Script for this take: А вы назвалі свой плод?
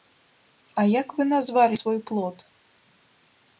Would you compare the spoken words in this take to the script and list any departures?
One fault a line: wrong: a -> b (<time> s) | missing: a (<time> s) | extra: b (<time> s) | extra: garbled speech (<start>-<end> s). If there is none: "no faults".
extra: як (1.0 s)